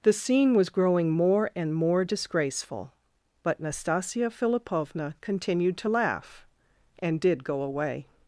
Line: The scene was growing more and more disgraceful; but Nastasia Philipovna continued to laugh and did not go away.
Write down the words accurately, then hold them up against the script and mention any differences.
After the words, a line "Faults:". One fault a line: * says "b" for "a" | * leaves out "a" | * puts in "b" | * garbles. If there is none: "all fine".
The scene was growing more and more disgraceful; but Nastasia Philipovna continued to laugh and did go away.
Faults:
* leaves out "not"